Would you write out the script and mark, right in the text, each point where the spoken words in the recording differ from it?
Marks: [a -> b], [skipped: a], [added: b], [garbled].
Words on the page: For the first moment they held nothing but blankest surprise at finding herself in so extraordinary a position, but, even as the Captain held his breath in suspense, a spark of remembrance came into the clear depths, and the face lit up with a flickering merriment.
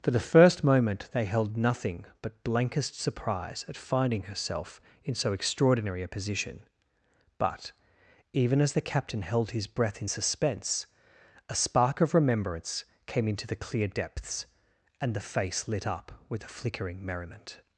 For the first moment they held nothing but blankest surprise at finding herself in so extraordinary a position, but, even as the Captain held his breath in suspense, a spark of remembrance came into the clear depths, and the face lit up with a flickering merriment.